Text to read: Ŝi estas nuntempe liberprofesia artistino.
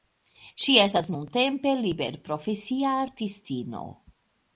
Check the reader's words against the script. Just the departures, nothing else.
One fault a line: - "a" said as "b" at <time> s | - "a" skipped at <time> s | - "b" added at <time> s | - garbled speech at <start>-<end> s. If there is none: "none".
none